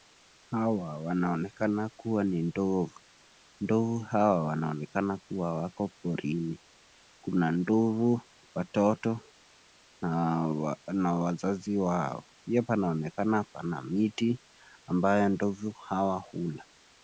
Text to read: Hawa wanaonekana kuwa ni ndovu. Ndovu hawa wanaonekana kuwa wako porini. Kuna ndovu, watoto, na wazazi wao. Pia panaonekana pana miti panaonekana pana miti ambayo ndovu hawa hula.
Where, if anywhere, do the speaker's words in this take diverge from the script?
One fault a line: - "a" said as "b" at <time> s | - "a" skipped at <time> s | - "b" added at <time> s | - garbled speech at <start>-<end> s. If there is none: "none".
- "panaonekana pana miti" skipped at 14.4 s